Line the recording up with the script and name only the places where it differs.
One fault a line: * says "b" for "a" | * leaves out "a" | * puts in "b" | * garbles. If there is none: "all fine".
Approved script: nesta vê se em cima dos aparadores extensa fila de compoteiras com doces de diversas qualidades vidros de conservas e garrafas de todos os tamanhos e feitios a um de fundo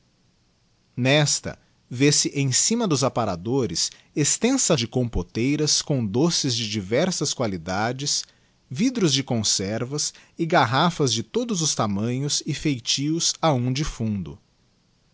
* leaves out "fila"